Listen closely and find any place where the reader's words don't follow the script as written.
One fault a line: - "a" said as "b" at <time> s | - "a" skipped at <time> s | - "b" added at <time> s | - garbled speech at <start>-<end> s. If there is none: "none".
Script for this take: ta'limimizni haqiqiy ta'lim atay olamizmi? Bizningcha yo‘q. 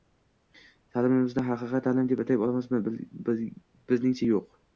- "deb" added at 2.1 s